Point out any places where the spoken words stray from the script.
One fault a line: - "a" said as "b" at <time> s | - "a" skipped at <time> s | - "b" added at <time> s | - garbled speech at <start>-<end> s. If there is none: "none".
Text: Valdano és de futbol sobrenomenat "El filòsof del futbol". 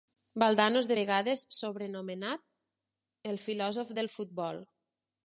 - "futbol" said as "vegades" at 1.0 s